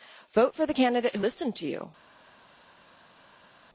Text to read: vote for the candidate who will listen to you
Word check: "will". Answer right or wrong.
wrong